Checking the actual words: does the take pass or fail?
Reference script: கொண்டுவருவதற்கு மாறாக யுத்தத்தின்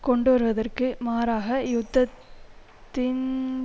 pass